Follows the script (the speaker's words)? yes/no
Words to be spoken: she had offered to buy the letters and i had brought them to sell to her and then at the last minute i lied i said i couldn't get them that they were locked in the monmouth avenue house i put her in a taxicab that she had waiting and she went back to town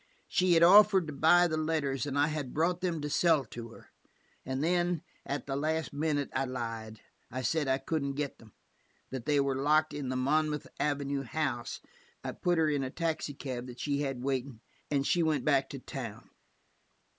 yes